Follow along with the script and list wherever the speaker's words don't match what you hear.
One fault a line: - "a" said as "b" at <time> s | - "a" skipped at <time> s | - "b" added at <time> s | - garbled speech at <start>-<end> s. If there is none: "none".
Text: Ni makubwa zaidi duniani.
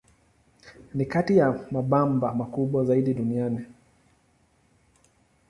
- "kati ya mabamba" added at 1.1 s